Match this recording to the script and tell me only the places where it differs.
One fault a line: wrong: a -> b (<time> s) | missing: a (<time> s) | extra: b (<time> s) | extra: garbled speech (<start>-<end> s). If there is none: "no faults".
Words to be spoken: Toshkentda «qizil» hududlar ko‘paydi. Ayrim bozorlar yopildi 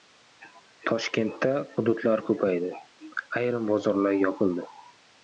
missing: qizil (1.5 s)